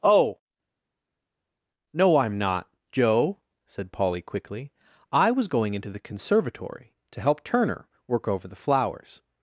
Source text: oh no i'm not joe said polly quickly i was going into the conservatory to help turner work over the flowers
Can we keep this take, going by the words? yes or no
yes